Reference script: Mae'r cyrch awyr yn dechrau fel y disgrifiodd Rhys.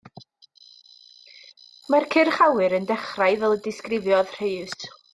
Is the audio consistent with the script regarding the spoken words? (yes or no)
yes